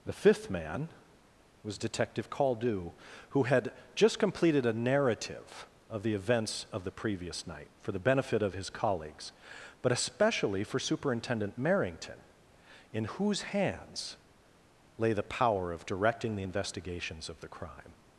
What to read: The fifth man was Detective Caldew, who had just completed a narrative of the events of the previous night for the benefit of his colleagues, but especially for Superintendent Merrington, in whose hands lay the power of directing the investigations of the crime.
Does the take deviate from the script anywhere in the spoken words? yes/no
no